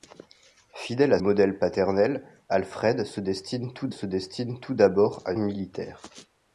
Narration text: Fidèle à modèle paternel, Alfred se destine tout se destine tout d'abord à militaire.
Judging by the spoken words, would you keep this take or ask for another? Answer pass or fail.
pass